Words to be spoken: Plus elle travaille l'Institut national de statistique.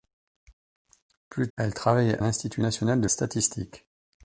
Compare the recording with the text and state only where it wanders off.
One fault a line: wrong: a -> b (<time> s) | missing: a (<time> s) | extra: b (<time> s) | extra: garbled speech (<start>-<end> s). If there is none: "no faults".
no faults